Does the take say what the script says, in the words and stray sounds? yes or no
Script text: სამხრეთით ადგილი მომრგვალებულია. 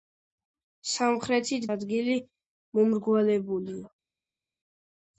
yes